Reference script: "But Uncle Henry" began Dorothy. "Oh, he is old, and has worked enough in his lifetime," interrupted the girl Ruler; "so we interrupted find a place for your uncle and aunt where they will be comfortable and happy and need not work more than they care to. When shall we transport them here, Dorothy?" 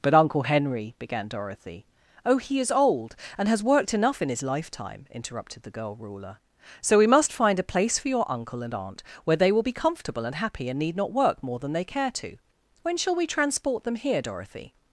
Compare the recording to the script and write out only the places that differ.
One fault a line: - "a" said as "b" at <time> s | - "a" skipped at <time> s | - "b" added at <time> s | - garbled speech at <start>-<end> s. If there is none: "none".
- "interrupted" said as "must" at 7.0 s